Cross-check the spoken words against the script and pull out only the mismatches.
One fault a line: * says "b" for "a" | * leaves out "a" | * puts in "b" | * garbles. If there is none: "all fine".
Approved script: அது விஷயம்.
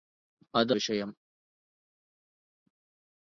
all fine